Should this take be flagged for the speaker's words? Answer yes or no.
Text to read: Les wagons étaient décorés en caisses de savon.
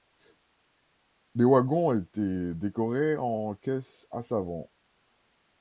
yes